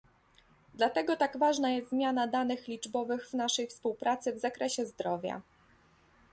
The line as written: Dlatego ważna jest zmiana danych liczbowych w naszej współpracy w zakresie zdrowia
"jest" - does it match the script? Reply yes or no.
yes